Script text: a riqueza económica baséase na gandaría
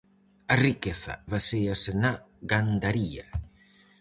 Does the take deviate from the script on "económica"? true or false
true